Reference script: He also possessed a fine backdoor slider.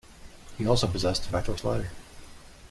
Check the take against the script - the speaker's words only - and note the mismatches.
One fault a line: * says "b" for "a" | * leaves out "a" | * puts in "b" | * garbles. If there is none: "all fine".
* leaves out "fine"